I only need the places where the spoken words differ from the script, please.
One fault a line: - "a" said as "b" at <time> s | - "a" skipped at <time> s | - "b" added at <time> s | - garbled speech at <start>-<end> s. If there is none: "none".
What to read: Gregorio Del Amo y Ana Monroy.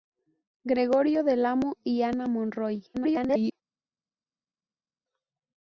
- garbled speech at 2.9-3.5 s